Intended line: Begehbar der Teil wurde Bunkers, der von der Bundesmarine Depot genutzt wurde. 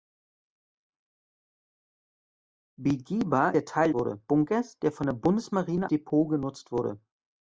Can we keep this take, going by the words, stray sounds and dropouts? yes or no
yes